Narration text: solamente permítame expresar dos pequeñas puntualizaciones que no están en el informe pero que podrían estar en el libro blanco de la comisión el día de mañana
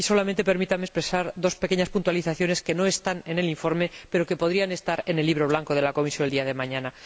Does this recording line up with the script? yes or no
yes